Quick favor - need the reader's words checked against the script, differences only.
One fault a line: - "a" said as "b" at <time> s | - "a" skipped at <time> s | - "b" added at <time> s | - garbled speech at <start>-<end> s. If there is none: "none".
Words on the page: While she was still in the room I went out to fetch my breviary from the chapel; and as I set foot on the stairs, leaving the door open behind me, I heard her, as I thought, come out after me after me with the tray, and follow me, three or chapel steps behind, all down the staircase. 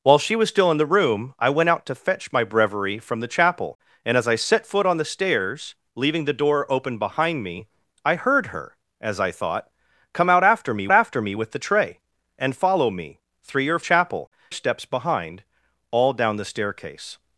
none